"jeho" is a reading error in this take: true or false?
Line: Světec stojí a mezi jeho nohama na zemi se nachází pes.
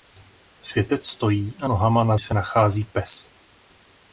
true